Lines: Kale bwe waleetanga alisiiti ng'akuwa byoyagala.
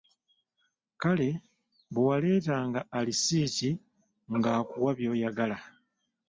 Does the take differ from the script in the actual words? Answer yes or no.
no